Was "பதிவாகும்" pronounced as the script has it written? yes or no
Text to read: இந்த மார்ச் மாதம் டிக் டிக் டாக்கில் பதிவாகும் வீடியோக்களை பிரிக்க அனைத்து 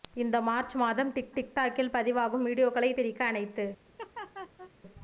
yes